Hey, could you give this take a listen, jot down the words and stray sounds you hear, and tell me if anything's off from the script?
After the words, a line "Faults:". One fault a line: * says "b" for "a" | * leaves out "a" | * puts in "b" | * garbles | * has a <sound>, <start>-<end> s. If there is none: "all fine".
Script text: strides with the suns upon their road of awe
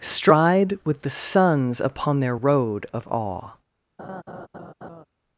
stride with the suns upon their road of awe
Faults:
* says "stride" for "strides"
* has a laugh, 4.0-5.0 s